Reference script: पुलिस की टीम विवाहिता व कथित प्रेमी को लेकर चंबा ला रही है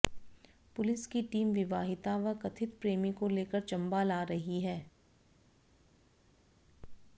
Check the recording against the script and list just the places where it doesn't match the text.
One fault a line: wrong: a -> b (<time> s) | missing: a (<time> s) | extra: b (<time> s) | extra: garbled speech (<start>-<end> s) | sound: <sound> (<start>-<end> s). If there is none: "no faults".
no faults